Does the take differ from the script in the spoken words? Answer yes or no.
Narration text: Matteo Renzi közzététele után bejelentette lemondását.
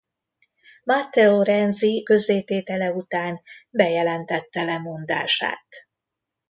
no